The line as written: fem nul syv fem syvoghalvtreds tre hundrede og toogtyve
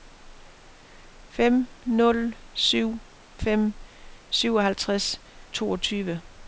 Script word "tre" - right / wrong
wrong